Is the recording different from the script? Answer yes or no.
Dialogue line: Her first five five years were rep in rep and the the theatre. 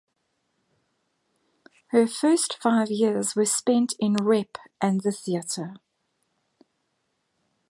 yes